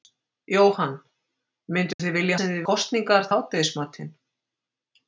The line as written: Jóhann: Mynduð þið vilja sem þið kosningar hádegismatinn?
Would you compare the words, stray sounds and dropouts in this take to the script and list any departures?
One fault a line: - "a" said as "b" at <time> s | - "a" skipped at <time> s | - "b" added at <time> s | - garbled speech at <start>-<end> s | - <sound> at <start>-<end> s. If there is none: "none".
- dropout at 1.9-2.0 s